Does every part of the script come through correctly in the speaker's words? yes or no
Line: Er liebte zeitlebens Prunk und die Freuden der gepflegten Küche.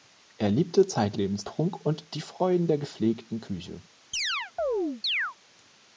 yes